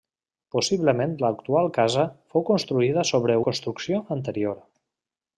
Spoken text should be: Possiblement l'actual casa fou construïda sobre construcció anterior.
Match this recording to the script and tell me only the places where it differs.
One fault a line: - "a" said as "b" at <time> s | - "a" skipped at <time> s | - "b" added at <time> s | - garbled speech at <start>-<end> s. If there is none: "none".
none